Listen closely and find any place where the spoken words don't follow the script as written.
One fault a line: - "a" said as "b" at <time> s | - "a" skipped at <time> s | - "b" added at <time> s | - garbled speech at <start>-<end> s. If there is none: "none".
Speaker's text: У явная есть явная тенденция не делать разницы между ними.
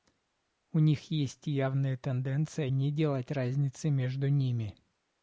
- "явная" said as "них" at 0.8 s